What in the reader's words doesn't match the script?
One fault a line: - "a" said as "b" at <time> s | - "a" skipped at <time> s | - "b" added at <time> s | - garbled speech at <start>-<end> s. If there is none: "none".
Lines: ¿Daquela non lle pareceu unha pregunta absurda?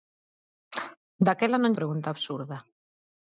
- "lle pareceu unha" skipped at 1.7 s